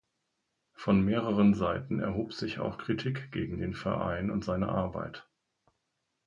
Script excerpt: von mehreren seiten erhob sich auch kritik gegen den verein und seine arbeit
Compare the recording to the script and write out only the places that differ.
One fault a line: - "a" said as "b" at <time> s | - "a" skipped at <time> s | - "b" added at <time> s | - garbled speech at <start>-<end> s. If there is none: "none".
none